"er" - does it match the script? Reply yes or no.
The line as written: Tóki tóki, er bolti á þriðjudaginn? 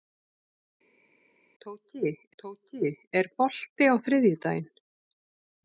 yes